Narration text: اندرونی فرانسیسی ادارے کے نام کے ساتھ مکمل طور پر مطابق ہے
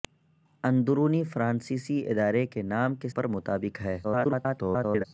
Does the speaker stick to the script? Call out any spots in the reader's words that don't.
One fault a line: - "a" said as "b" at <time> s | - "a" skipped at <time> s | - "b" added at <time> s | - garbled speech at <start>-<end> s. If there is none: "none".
- "ساتھ مکمل طور" skipped at 3.1 s
- garbled speech at 4.0-5.0 s